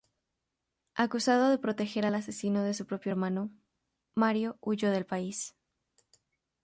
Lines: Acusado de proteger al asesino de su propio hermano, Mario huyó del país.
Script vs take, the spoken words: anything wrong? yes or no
no